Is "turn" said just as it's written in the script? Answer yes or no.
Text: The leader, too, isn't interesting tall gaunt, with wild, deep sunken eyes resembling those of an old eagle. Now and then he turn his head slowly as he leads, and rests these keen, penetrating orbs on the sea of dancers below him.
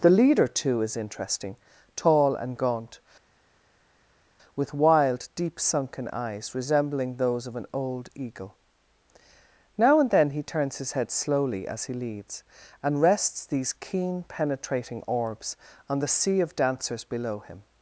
no